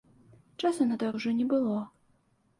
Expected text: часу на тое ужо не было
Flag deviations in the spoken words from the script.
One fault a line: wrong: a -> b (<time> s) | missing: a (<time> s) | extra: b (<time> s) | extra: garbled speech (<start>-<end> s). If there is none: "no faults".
no faults